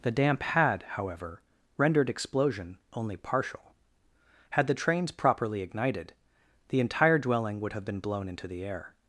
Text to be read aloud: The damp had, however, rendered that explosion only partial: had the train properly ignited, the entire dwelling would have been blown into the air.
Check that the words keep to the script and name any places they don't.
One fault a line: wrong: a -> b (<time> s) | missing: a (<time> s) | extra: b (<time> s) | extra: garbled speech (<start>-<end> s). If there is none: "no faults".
missing: that (2.1 s)
wrong: train -> trains (4.7 s)